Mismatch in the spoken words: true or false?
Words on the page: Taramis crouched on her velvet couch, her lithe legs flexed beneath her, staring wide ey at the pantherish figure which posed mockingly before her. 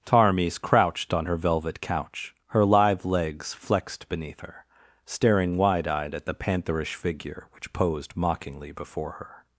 true